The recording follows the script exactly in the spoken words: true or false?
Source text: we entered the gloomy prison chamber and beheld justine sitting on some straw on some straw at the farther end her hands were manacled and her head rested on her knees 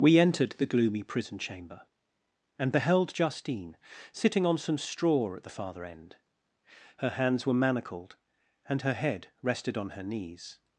false